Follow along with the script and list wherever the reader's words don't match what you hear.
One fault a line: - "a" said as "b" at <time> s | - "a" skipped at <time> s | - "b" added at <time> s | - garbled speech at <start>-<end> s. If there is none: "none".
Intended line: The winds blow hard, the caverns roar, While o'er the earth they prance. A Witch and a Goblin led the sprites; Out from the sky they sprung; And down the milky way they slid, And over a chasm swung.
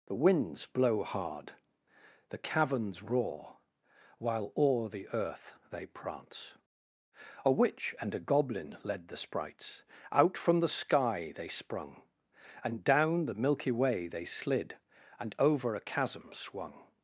none